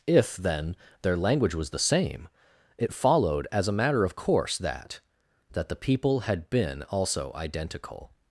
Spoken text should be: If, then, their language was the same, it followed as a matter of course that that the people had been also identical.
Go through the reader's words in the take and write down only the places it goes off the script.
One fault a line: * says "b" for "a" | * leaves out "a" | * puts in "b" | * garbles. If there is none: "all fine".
all fine